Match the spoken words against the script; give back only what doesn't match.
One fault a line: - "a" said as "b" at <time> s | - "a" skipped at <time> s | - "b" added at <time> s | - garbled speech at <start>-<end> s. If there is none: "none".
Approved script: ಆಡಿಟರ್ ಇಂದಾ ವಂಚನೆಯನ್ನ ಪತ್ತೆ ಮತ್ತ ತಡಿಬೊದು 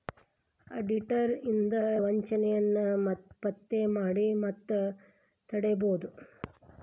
- "ಮಾಡಿ" added at 4.0 s